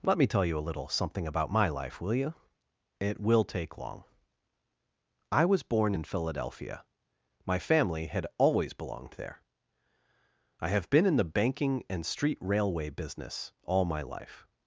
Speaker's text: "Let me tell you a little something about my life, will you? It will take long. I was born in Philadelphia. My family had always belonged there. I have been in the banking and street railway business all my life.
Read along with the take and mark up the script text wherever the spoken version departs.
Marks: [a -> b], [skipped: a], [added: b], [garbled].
"Let me tell you a little something about my life, will you? It will take long. I was born in Philadelphia. My family had always belonged there. I have been in the banking and street railway business all my life.